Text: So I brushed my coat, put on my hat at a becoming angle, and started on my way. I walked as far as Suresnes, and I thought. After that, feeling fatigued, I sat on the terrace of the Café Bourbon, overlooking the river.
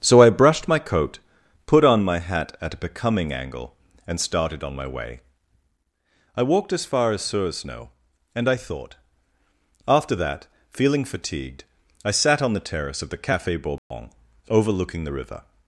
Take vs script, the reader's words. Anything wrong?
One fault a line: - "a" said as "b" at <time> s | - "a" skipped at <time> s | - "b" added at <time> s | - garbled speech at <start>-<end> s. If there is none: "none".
none